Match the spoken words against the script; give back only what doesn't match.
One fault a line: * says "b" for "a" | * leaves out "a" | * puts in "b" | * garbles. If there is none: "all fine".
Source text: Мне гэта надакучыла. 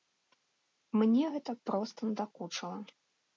* puts in "проста"